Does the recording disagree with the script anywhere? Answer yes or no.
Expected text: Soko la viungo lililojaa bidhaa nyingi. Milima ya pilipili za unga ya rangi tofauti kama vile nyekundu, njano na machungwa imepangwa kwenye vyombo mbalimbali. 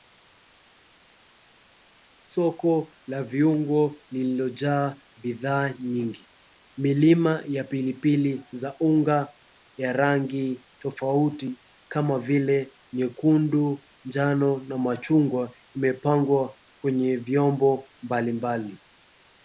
no